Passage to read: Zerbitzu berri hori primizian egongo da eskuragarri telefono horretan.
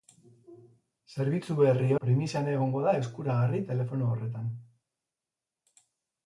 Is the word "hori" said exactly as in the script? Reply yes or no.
no